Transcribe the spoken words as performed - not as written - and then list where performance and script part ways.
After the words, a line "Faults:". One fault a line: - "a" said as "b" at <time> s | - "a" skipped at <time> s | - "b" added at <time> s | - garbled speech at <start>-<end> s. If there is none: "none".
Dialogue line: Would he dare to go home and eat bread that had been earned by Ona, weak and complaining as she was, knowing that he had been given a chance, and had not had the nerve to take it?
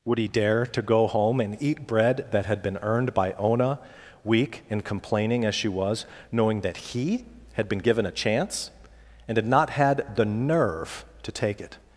Would he dare to go home and eat bread that had been earned by Ona, weak and complaining as she was, knowing that he had been given a chance, and had not had the nerve to take it?
Faults:
none